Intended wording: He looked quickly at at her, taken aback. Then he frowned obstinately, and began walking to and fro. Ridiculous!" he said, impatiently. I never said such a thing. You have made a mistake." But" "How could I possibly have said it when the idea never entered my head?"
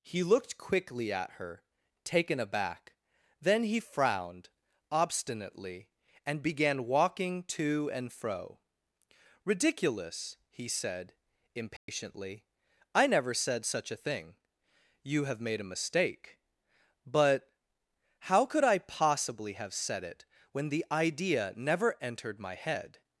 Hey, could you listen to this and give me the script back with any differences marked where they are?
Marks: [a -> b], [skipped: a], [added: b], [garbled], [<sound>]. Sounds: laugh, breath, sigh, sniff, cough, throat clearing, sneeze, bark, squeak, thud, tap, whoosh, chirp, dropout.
He looked quickly at [skipped: at] her, taken aback. Then he frowned obstinately, and began walking to and fro. Ridiculous!" he said, impatiently. [dropout] I never said such a thing. You have made a mistake." But" "How could I possibly have said it when the idea never entered my head?"